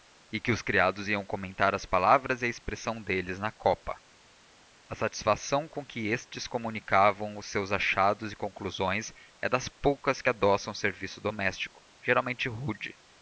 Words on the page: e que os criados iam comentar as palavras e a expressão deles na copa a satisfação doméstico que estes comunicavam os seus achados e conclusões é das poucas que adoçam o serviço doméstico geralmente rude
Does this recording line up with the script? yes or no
no